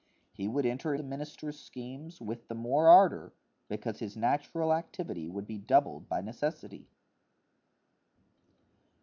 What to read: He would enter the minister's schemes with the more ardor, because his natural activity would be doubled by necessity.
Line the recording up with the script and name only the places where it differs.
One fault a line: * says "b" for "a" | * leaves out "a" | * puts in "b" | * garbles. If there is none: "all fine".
all fine